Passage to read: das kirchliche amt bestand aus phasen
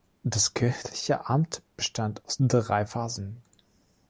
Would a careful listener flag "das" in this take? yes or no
no